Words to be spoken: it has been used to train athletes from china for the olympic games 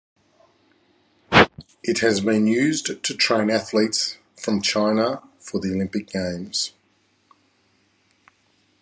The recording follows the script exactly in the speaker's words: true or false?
true